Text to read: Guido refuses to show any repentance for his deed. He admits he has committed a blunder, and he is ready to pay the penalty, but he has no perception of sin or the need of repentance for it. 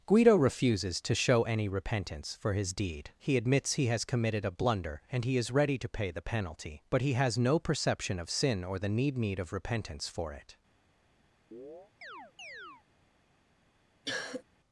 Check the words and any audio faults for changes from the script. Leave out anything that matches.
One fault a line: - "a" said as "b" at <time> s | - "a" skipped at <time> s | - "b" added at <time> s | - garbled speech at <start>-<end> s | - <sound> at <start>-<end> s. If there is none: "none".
- "need" added at 9.2 s
- chirp at 11.5-12.8 s
- cough at 14.0-14.4 s